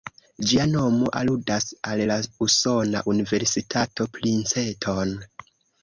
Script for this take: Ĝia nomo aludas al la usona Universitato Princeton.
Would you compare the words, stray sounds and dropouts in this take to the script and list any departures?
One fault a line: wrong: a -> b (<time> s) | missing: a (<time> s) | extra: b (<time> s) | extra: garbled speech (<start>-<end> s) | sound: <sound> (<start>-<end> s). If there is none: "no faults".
no faults